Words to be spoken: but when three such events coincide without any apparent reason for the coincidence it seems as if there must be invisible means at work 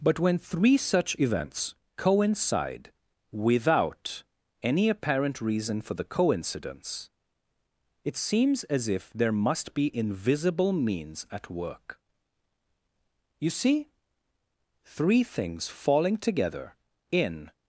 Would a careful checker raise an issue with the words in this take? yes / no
yes